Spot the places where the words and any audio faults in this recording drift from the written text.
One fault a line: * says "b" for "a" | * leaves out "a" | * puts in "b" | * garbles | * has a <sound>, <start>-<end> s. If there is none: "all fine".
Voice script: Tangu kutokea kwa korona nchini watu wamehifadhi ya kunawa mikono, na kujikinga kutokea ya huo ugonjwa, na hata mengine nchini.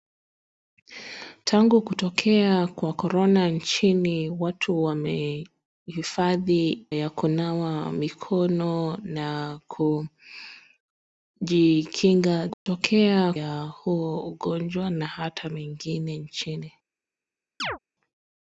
* has a dropout, 12.5-12.7 s
* has a chirp, 17.6-17.8 s